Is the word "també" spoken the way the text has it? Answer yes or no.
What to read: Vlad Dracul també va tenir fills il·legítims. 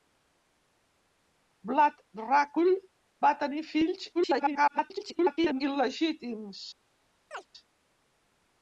no